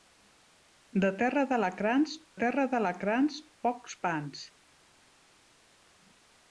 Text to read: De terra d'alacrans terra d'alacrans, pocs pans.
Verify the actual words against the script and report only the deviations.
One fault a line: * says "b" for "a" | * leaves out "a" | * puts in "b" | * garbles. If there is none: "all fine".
all fine